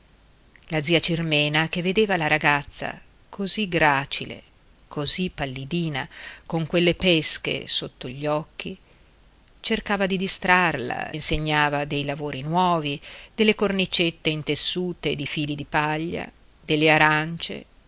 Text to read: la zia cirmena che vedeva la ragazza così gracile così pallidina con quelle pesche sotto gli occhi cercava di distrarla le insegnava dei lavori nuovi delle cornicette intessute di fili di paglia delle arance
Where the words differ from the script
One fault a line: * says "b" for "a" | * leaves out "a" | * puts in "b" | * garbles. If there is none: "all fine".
* leaves out "le"